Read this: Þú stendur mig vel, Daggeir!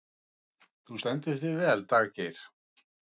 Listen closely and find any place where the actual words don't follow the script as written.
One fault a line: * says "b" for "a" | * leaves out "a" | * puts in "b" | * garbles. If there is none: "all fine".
* says "þig" for "mig"